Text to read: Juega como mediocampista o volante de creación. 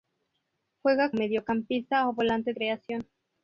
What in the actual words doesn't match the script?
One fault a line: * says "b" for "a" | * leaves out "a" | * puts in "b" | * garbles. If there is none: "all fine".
* leaves out "como"
* leaves out "de"